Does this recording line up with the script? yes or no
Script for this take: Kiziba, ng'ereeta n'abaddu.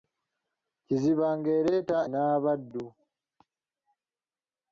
yes